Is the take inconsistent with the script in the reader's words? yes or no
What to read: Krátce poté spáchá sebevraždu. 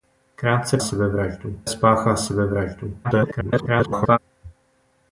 yes